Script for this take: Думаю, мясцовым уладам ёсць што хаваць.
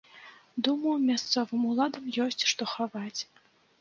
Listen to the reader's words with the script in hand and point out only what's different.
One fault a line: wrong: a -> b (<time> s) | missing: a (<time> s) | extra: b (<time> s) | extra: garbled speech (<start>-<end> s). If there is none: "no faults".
no faults